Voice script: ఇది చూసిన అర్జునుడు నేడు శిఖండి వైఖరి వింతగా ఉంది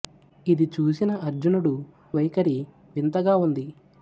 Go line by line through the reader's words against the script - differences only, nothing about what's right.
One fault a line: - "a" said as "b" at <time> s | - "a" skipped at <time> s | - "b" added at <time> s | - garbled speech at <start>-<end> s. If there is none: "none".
- "నేడు శిఖండి" skipped at 1.7 s